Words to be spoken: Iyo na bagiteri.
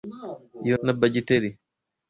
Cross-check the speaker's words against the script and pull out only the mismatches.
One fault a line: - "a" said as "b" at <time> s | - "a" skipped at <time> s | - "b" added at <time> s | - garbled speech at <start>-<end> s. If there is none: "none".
none